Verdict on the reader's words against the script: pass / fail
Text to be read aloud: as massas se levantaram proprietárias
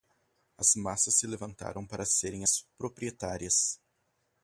fail